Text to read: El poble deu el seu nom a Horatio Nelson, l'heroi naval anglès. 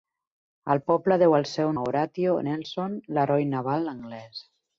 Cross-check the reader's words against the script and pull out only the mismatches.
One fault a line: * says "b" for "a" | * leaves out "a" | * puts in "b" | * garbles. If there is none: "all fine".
* leaves out "nom"